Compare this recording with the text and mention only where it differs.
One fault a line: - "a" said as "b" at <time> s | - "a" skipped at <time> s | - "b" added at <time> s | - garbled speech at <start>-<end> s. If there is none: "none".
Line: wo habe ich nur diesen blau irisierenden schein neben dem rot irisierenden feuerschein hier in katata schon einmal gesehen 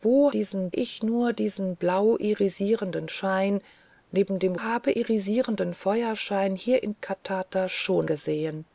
- "habe" said as "diesen" at 0.3 s
- "rot" said as "habe" at 4.6 s
- "einmal" skipped at 8.1 s